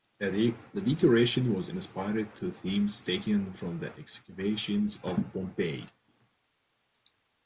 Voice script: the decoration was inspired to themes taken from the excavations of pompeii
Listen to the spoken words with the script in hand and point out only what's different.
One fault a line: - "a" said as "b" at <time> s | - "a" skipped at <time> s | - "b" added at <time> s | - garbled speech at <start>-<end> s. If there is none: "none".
none